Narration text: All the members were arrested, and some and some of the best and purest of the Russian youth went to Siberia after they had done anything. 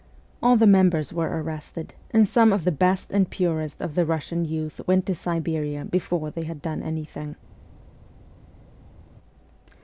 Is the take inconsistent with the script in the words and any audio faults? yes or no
yes